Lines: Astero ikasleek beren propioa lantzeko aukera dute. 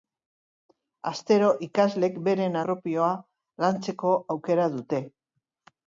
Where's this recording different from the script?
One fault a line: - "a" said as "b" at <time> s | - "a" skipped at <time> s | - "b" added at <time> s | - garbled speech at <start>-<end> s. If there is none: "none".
none